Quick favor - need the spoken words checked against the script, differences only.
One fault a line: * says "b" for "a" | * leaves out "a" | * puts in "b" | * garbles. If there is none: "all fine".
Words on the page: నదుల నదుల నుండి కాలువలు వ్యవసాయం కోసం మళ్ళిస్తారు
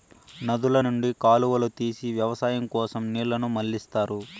* leaves out "నదుల"
* puts in "తీసి"
* puts in "నీళ్ళను"